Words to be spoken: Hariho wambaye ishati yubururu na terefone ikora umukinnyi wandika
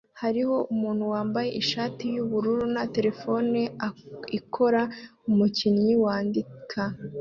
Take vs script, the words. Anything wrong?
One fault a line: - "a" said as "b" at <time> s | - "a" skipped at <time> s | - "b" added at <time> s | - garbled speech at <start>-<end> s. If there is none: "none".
- "umuntu" added at 0.7 s